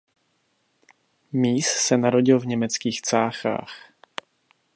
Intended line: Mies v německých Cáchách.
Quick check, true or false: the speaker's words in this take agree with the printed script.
false